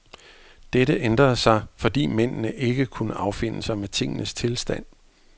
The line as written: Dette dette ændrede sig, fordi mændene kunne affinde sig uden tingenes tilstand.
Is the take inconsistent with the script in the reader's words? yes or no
yes